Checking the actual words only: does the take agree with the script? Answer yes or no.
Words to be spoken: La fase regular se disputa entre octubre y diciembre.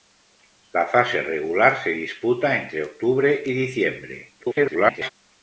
no